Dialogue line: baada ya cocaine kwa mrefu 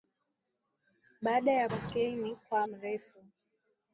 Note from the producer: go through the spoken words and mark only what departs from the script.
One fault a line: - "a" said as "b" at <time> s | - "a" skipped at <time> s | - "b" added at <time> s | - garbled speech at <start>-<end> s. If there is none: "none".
none